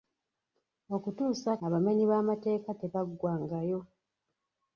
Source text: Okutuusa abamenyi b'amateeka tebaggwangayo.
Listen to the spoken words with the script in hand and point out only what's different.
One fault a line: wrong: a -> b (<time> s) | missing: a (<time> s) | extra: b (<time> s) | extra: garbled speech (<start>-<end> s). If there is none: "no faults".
no faults